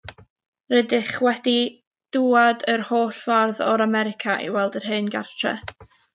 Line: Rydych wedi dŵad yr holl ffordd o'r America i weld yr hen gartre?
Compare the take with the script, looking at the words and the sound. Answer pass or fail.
pass